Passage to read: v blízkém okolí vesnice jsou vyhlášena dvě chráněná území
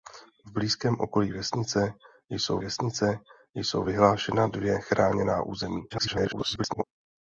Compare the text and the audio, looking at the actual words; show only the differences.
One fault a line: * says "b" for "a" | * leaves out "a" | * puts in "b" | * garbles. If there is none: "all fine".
* puts in "vesnice jsou"
* garbles